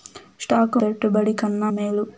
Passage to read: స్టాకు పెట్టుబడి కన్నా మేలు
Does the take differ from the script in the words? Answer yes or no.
no